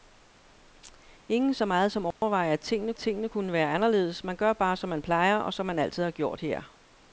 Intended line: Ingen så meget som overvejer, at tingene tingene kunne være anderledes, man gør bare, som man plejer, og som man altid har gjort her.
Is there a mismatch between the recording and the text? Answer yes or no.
no